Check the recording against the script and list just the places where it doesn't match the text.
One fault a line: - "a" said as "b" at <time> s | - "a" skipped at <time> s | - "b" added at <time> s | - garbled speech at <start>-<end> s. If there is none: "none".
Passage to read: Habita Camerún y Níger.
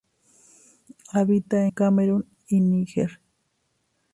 none